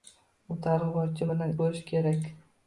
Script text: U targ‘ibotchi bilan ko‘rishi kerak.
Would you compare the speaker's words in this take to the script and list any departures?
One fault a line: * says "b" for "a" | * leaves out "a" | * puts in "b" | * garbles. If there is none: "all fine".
all fine